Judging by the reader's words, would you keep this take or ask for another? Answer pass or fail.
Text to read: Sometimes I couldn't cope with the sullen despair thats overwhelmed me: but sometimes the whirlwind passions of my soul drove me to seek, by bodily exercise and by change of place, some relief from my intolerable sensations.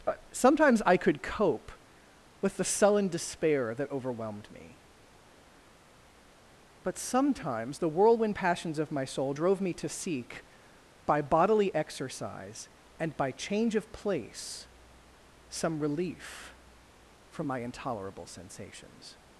fail